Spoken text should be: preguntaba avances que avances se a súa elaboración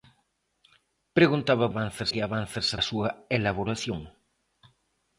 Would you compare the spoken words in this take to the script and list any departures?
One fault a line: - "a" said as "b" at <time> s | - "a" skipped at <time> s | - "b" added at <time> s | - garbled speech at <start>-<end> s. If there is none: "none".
none